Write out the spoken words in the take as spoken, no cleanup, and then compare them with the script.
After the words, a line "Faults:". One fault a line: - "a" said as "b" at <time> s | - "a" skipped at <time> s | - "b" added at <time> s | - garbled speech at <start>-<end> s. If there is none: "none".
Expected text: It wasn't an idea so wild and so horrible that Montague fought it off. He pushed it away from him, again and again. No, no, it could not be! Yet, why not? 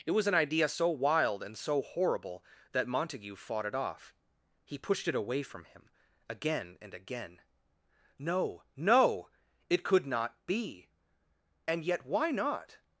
It was an idea so wild and so horrible that Montague fought it off. He pushed it away from him, again and again. No, no, it could not be! And yet, why not?
Faults:
- "wasn't" said as "was" at 0.1 s
- "And" added at 11.7 s